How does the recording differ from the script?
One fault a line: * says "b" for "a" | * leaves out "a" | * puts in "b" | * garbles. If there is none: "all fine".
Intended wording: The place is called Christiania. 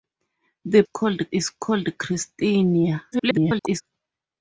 * says "called" for "place"
* garbles